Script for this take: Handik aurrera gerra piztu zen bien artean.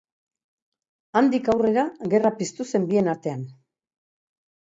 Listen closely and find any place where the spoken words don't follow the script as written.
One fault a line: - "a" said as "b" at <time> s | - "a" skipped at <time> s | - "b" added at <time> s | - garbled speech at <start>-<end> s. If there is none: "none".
none